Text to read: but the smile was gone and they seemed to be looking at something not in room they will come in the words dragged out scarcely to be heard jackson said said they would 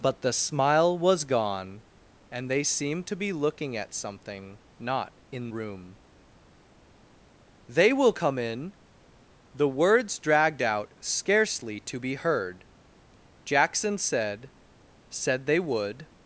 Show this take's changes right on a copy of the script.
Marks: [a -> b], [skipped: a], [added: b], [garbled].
but the smile was gone and they seemed to be looking at something not in room they will come in the words dragged out scarcely to be heard jackson said said they would